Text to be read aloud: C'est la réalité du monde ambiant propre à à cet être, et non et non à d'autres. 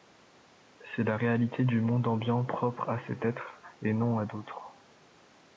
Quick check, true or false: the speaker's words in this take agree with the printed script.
false